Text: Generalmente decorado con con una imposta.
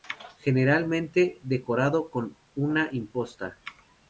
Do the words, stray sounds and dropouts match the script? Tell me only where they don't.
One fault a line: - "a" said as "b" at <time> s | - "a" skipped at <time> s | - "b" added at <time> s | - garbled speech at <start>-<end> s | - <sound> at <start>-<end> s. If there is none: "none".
- "con" skipped at 2.4 s